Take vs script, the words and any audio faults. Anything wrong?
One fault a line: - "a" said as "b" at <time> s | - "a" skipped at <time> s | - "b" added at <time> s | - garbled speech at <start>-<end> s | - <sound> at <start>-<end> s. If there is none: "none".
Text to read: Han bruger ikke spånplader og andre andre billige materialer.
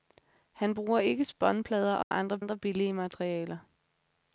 - dropout at 2.0-2.1 s